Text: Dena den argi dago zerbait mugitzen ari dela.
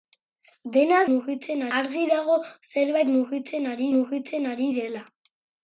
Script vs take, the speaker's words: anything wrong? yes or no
yes